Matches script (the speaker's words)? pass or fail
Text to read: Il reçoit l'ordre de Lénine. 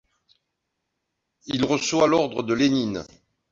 pass